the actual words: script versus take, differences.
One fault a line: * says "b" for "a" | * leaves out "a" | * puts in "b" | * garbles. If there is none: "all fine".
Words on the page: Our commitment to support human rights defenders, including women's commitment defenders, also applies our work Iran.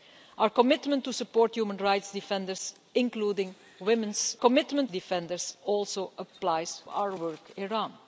all fine